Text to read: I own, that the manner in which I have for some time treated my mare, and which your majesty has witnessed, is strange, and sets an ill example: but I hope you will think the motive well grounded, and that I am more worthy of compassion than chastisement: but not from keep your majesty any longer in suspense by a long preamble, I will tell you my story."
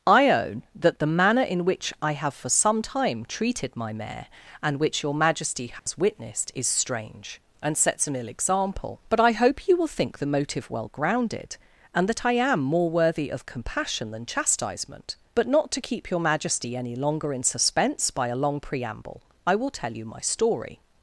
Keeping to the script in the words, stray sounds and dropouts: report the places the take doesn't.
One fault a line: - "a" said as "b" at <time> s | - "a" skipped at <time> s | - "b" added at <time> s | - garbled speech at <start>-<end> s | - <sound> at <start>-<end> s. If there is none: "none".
- dropout at 5.8-5.9 s
- "from" said as "to" at 15.7 s